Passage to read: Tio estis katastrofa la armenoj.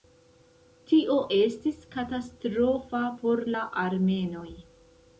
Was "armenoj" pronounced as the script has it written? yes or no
yes